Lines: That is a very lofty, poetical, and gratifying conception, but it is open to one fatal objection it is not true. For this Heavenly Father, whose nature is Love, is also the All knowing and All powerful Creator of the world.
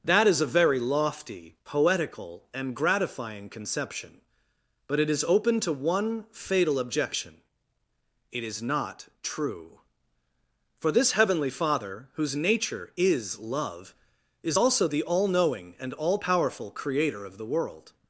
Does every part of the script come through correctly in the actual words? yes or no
yes